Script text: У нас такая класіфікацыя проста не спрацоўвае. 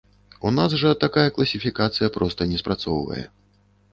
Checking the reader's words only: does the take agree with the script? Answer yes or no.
no